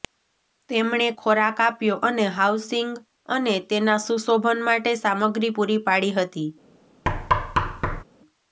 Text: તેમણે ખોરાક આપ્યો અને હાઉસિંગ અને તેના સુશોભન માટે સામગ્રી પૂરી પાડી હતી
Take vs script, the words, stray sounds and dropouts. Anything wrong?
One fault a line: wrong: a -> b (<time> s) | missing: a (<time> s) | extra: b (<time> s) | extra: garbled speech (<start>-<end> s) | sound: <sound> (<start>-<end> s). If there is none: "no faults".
sound: thud (7.1-8.0 s)